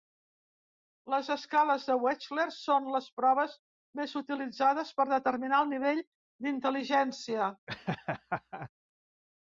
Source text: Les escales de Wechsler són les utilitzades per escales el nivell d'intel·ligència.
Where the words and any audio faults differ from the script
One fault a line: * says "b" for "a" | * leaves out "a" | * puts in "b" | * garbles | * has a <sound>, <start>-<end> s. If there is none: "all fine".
* puts in "proves més"
* says "determinar" for "escales"
* has a laugh, 7.7-8.7 s